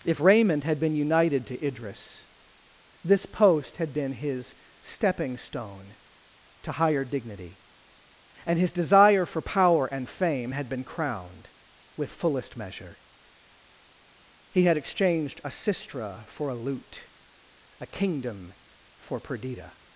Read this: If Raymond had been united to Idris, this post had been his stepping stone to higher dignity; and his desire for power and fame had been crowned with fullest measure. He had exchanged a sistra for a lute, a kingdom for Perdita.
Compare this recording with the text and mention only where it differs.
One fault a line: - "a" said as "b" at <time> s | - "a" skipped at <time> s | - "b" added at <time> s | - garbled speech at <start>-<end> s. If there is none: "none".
none